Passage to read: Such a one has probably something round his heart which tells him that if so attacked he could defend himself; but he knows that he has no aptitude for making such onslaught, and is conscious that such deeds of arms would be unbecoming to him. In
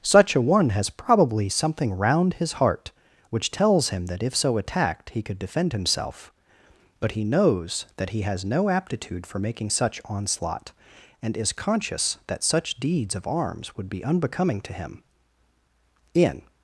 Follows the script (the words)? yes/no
yes